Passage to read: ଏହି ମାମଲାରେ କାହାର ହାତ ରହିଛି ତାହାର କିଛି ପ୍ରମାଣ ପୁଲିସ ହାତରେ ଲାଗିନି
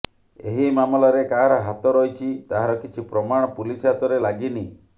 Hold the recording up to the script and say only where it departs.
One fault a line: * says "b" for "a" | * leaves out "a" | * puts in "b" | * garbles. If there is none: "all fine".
all fine